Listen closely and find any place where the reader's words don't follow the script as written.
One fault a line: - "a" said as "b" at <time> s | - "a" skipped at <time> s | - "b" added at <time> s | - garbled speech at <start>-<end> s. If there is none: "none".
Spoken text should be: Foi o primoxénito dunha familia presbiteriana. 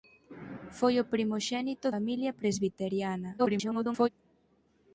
- "dunha" skipped at 1.9 s
- garbled speech at 3.4-4.1 s